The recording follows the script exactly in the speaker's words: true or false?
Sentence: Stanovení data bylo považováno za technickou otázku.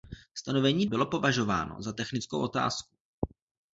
false